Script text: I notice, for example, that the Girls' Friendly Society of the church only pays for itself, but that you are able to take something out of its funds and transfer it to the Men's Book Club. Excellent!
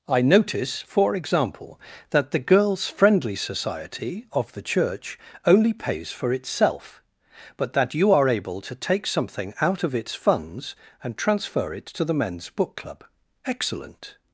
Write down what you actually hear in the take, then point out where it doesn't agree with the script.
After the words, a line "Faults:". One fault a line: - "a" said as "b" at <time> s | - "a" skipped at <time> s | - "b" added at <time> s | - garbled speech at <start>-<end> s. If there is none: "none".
I notice, for example, that the Girls' Friendly Society of the church only pays for itself, but that you are able to take something out of its funds and transfer it to the Men's Book Club. Excellent!
Faults:
none